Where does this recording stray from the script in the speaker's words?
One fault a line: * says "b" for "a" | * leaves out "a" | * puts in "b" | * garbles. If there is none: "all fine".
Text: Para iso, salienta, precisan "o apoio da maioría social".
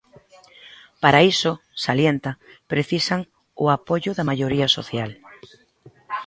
all fine